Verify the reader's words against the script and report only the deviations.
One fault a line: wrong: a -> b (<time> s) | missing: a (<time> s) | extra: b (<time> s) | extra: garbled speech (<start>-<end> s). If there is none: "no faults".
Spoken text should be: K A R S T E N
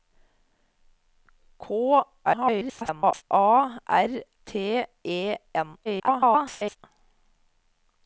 extra: garbled speech (2.2-3.2 s)
missing: S (4.2 s)
extra: garbled speech (5.8-6.8 s)